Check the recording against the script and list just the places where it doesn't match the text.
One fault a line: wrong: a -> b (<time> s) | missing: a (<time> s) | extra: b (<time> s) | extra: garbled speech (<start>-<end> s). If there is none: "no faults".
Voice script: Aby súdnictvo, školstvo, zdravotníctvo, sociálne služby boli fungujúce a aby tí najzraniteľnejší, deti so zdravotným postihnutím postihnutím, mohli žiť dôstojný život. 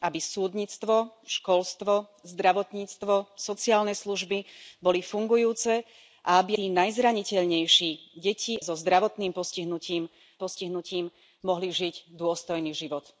no faults